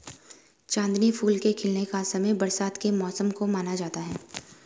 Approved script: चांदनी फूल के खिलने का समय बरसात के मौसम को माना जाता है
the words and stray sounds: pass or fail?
pass